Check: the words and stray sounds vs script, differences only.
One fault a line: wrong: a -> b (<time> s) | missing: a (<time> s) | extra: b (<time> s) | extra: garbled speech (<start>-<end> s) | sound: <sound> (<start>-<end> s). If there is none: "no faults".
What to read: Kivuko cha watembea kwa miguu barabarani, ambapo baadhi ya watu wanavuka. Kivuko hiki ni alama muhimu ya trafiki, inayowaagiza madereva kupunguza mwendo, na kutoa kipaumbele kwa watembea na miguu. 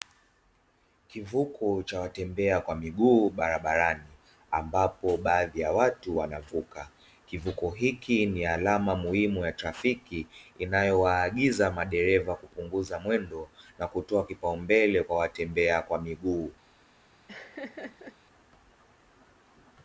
wrong: na -> kwa (15.8 s)
sound: laugh (17.3-18.2 s)